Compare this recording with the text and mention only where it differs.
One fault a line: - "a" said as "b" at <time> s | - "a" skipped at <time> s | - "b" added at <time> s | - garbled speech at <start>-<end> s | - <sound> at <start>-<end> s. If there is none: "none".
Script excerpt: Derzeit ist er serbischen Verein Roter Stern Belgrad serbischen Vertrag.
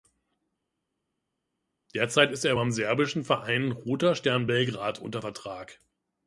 - "beim" added at 2.5 s
- "serbischen" said as "unter" at 5.0 s